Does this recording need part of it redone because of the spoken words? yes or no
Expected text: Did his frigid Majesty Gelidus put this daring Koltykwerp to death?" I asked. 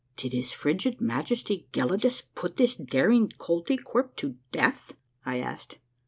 no